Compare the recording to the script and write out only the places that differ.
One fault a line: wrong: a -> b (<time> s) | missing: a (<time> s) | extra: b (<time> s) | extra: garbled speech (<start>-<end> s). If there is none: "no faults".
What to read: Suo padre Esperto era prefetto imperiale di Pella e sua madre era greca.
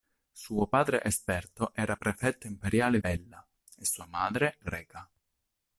missing: di (3.0 s)
missing: era (4.6 s)